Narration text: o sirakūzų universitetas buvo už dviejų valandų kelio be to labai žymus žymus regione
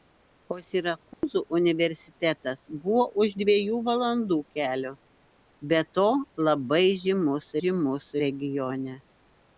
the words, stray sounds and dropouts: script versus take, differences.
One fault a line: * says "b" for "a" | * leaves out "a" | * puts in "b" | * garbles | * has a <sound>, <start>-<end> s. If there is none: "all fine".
* has a dropout, 1.1-1.2 s